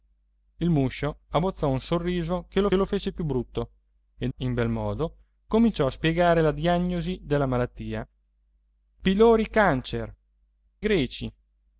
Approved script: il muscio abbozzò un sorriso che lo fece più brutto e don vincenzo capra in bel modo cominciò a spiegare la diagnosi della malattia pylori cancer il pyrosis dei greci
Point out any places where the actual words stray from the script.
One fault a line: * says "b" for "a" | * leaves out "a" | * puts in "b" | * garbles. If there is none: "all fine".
* puts in "lo"
* leaves out "don vincenzo capra"
* leaves out "il pyrosis dei"